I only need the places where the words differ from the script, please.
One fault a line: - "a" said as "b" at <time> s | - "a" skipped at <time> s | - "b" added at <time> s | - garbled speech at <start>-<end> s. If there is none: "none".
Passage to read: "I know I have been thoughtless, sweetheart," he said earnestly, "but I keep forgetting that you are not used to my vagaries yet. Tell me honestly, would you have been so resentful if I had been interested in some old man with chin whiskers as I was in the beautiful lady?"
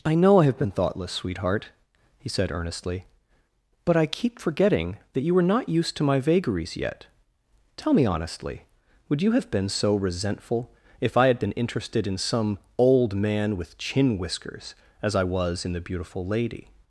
- "are" said as "were" at 5.3 s